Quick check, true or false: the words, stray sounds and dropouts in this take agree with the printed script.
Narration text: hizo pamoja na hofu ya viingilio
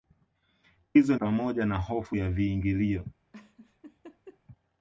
false